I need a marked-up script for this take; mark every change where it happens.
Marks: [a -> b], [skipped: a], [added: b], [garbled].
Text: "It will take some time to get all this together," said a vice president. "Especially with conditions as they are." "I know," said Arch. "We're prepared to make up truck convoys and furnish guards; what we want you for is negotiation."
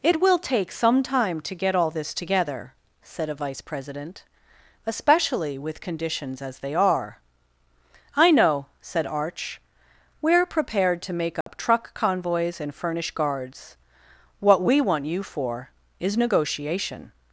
"It will take some time to get all this together," said a vice president. "Especially with conditions as they are." "I know," said Arch. "We're prepared to make up truck convoys and furnish guards; what we want you for is negotiation."